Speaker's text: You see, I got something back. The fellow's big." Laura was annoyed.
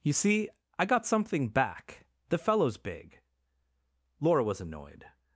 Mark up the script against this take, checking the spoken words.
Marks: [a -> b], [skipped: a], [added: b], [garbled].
You see, I got something back. The fellow's big." Laura was annoyed.